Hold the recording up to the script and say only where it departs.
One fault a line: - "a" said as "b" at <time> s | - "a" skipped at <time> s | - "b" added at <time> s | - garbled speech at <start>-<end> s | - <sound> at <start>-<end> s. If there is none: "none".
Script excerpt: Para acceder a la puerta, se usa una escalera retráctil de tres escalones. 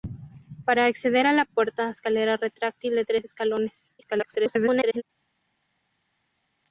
- "se usa una" skipped at 1.9 s
- garbled speech at 4.0-5.0 s